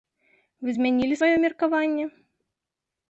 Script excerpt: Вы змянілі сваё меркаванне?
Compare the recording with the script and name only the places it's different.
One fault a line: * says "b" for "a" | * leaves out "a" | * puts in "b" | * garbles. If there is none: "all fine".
all fine